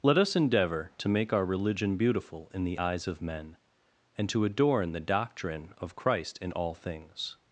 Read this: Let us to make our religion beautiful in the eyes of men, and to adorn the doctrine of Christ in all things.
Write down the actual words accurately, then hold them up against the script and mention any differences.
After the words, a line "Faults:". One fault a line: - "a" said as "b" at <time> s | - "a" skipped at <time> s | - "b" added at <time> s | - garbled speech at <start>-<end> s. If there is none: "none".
Let us endeavor to make our religion beautiful in the eyes of men, and to adorn the doctrine of Christ in all things.
Faults:
- "endeavor" added at 0.3 s